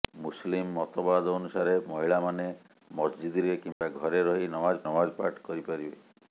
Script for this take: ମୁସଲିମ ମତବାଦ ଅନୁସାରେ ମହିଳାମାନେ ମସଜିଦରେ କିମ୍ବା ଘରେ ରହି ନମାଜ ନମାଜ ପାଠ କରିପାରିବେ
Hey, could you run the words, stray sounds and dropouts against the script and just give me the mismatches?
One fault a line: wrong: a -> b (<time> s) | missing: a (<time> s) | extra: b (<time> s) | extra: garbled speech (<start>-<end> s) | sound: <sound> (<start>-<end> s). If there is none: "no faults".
sound: dropout (3.7-3.8 s)